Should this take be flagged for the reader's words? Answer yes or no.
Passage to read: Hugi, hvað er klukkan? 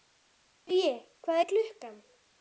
no